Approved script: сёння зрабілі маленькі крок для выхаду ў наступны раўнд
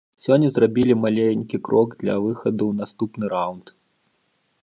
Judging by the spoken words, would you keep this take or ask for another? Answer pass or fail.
pass